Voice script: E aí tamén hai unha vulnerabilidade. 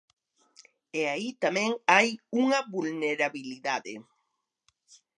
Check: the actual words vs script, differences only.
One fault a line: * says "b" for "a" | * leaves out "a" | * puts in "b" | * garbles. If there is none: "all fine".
all fine